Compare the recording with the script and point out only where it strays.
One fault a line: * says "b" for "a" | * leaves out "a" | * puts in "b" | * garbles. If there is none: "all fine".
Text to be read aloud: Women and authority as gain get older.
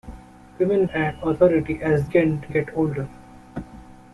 all fine